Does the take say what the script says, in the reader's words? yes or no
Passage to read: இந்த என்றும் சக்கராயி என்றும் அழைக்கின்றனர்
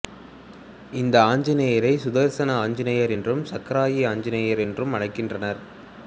no